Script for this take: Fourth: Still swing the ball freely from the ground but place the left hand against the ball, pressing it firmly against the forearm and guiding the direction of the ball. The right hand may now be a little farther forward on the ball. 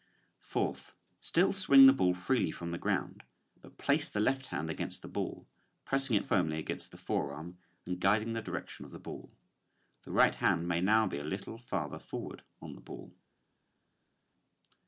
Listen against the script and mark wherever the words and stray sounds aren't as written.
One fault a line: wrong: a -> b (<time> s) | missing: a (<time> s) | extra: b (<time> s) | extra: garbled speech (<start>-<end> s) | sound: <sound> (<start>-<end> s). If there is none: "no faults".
no faults